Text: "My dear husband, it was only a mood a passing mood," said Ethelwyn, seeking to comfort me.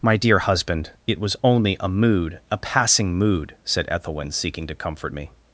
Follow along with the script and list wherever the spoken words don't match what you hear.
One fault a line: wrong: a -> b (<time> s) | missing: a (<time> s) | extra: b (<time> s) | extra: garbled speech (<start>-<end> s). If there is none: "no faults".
no faults